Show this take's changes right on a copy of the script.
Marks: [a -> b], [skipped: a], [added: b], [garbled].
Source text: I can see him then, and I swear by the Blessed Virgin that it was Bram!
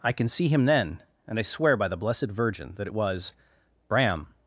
I can see him then, and I swear by the Blessed Virgin that it was Bram!